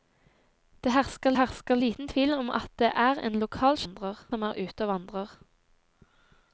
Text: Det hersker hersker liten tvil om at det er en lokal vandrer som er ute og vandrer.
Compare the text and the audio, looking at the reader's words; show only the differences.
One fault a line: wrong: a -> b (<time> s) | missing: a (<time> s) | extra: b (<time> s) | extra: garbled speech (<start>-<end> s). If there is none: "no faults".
no faults